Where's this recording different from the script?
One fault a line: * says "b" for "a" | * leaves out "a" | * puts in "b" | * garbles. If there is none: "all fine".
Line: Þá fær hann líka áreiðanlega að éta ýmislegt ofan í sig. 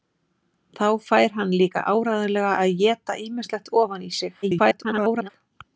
* garbles